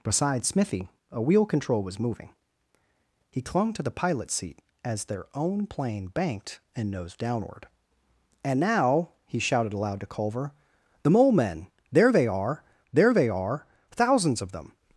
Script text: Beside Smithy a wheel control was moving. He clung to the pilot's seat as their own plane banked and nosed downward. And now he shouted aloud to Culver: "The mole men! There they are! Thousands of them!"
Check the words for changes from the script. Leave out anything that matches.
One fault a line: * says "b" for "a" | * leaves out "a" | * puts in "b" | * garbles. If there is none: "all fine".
* puts in "there they are"